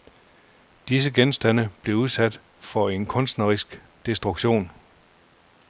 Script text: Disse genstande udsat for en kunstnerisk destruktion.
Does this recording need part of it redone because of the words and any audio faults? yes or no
yes